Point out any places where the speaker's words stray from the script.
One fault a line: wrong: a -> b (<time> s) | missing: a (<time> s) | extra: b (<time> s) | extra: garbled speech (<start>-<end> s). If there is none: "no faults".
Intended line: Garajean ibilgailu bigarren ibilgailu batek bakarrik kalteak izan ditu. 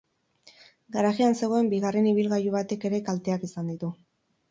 wrong: ibilgailu -> zegoen (1.4 s)
wrong: bakarrik -> ere (2.9 s)